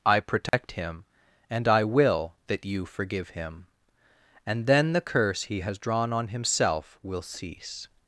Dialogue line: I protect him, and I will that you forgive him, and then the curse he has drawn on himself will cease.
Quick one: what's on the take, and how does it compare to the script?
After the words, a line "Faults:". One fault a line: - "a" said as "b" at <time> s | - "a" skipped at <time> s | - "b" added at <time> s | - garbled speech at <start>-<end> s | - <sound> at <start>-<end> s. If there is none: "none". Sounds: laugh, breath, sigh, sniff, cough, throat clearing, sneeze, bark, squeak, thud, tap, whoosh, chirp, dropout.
I protect him, and I will that you forgive him, and then the curse he has drawn on himself will cease.
Faults:
- dropout at 0.5-0.5 s